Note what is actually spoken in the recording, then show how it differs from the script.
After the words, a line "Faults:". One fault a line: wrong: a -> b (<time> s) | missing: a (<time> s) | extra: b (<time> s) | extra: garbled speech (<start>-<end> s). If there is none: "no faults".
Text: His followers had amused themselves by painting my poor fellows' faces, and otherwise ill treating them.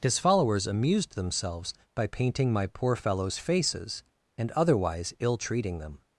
His followers amused themselves by painting my poor fellows' faces, and otherwise ill treating them.
Faults:
missing: had (0.7 s)